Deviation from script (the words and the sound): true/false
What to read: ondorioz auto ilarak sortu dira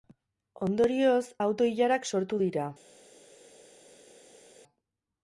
false